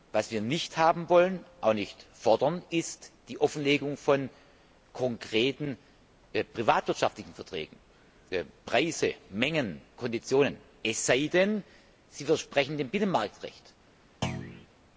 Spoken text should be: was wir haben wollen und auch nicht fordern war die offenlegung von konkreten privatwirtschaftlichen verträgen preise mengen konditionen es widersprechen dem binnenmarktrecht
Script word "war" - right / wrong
wrong